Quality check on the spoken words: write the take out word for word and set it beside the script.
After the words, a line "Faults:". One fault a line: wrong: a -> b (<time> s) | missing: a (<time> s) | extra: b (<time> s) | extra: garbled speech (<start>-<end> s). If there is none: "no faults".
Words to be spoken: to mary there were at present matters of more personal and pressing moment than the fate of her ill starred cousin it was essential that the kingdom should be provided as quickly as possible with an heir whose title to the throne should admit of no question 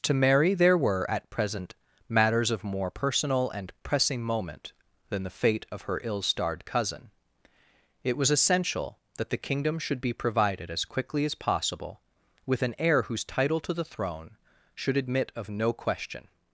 to mary there were at present matters of more personal and pressing moment than the fate of her ill starred cousin it was essential that the kingdom should be provided as quickly as possible with an heir whose title to the throne should admit of no question
Faults:
no faults